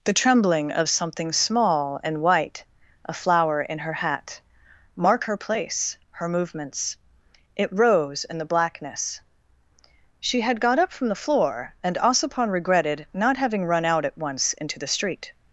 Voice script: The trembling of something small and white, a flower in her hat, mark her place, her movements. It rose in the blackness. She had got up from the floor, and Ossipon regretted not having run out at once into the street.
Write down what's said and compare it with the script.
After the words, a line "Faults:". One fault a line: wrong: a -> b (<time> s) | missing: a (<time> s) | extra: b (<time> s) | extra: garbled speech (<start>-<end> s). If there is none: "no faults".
The trembling of something small and white, a flower in her hat, mark her place, her movements. It rose in the blackness. She had got up from the floor, and Ossipon regretted not having run out at once into the street.
Faults:
no faults